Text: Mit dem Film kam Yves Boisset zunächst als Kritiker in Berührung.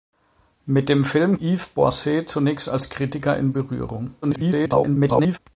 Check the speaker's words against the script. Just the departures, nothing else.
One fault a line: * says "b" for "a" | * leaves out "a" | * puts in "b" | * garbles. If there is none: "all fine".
* leaves out "kam"
* garbles